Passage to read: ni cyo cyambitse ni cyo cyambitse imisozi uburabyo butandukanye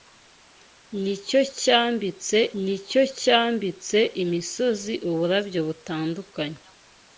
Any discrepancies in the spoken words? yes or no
no